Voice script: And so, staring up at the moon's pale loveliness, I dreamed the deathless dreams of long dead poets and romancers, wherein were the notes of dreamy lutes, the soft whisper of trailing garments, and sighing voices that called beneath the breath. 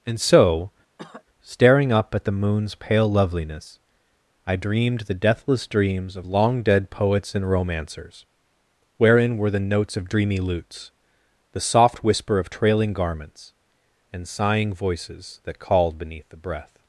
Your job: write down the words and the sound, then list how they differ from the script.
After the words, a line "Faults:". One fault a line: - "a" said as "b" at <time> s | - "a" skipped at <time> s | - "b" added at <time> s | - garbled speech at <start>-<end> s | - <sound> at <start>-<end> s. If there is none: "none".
And so, staring up at the moon's pale loveliness, I dreamed the deathless dreams of long dead poets and romancers, wherein were the notes of dreamy lutes, the soft whisper of trailing garments, and sighing voices that called beneath the breath.
Faults:
- cough at 1.0-1.2 s